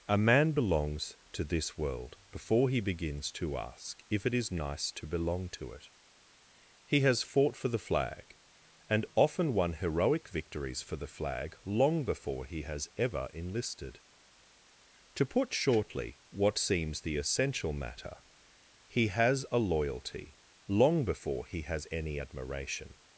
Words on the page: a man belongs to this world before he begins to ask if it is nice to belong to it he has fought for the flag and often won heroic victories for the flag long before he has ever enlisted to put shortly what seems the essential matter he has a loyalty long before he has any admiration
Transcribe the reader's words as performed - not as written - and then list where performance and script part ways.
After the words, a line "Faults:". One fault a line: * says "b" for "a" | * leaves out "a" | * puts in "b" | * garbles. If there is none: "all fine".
a man belongs to this world before he begins to ask if it is nice to belong to it he has fought for the flag and often won heroic victories for the flag long before he has ever enlisted to put shortly what seems the essential matter he has a loyalty long before he has any admiration
Faults:
all fine